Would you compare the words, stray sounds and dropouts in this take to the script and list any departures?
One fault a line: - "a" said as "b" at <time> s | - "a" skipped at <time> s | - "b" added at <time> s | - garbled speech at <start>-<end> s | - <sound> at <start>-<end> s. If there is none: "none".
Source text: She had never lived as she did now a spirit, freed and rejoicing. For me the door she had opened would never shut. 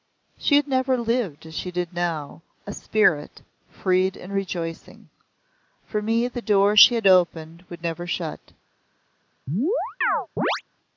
- chirp at 9.5-10.6 s